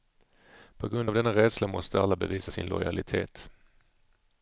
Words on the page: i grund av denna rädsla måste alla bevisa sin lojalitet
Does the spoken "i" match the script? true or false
false